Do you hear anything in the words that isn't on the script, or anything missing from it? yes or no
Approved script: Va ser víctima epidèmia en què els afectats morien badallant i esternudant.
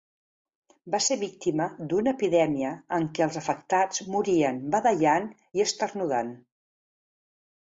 yes